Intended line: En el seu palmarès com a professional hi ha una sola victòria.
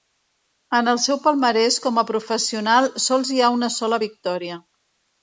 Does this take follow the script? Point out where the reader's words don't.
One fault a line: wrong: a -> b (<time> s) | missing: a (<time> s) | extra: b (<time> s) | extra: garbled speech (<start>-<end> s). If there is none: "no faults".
extra: sols (3.0 s)